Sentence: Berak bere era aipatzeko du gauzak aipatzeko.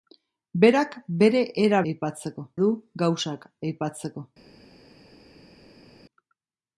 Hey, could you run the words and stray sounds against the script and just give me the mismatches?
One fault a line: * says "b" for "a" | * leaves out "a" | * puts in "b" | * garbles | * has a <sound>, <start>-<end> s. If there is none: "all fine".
all fine